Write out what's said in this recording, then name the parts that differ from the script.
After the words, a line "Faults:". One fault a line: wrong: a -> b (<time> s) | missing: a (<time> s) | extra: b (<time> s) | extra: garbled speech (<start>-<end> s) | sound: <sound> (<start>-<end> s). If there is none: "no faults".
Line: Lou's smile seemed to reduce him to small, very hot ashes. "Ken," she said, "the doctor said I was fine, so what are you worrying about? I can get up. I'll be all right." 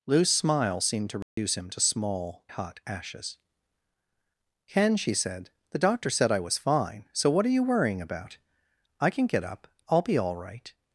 Lou's smile seemed to reduce him to small, hot ashes. "Ken," she said, "the doctor said I was fine, so what are you worrying about? I can get up. I'll be all right."
Faults:
sound: dropout (1.2-1.4 s)
missing: very (2.5 s)